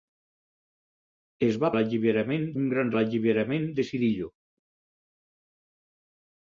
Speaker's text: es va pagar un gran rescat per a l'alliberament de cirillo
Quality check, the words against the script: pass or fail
fail